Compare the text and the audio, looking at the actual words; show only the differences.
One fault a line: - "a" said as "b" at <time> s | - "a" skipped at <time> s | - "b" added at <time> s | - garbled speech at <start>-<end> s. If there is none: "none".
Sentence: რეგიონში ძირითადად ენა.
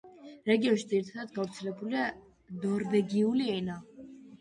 - "გავრცელებულია ნორვეგიული" added at 1.4 s